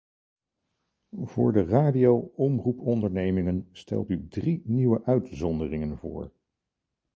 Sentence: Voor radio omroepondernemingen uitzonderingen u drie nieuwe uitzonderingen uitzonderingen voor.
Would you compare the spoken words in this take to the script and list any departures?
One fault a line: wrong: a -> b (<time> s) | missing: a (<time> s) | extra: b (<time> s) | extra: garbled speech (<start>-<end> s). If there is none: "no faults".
extra: de (1.5 s)
wrong: uitzonderingen -> stelt (3.7 s)
missing: uitzonderingen (6.0 s)